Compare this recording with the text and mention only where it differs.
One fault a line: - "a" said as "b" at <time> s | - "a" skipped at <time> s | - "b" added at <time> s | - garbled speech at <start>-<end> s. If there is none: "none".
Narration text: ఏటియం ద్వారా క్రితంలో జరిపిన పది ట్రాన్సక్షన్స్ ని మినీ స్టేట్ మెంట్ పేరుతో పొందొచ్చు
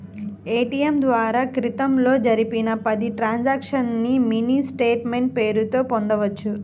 none